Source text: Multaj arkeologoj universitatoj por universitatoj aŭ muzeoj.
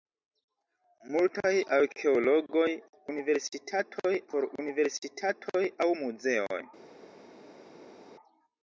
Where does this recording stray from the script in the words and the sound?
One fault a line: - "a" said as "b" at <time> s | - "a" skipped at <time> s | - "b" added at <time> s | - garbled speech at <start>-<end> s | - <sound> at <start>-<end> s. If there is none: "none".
none